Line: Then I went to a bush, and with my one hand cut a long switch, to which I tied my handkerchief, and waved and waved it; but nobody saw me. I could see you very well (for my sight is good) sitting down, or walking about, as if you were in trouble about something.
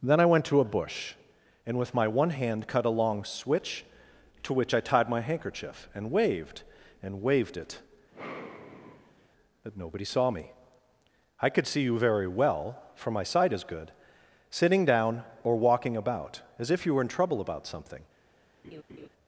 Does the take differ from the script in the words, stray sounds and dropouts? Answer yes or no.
yes